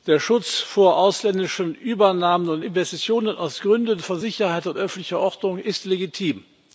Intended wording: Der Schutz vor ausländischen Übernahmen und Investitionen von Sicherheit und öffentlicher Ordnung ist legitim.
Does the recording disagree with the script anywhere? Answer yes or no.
yes